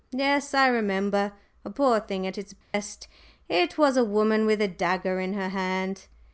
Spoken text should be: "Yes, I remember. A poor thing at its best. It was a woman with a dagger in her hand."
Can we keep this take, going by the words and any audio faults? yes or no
no